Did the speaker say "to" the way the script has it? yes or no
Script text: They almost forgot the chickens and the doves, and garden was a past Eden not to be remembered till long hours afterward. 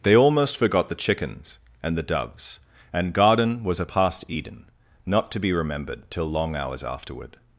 yes